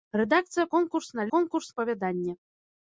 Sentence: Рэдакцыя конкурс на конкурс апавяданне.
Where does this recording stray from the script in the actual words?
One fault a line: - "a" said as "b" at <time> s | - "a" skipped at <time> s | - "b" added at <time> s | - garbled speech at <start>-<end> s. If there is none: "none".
none